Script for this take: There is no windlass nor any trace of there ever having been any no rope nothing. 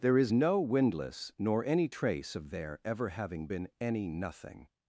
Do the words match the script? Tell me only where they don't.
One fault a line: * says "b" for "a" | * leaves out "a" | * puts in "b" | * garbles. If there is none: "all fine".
* leaves out "no rope"